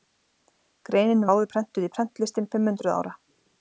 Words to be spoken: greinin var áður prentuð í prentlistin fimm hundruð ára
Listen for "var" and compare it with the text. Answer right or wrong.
wrong